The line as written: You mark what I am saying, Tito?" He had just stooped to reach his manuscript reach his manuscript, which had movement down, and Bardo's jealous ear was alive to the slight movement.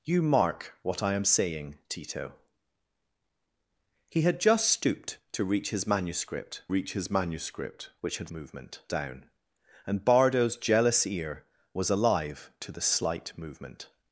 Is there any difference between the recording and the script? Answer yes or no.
no